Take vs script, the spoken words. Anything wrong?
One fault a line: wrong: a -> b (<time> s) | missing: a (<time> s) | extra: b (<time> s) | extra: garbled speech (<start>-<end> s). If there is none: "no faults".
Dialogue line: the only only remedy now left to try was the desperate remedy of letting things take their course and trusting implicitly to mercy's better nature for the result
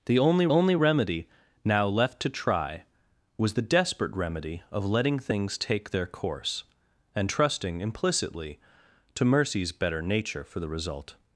no faults